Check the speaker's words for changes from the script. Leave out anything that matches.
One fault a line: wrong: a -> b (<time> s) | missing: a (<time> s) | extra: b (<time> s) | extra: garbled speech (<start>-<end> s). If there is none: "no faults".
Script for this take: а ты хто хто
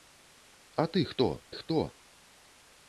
no faults